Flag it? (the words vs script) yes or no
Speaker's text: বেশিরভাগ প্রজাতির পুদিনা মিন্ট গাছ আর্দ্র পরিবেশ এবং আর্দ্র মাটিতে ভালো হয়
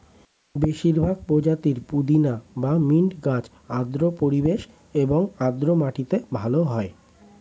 yes